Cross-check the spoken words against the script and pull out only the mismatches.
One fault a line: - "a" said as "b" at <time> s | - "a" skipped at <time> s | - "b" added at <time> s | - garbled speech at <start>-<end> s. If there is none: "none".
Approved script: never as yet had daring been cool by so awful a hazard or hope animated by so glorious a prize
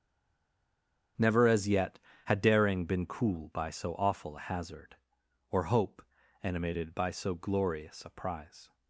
none